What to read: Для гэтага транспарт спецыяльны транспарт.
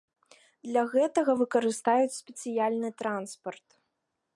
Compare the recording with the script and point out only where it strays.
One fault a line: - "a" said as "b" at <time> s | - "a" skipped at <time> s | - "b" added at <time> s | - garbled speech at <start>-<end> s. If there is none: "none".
- "транспарт" said as "выкарыстаюць" at 1.4 s